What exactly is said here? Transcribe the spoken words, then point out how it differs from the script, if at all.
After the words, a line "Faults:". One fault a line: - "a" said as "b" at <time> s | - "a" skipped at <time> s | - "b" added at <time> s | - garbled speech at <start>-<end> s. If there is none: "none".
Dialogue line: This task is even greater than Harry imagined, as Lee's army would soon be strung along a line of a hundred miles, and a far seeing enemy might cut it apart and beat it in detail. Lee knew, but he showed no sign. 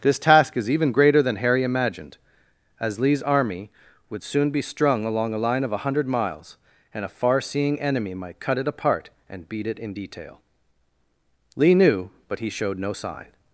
This task is even greater than Harry imagined, as Lee's army would soon be strung along a line of a hundred miles, and a far seeing enemy might cut it apart and beat it in detail. Lee knew, but he showed no sign.
Faults:
none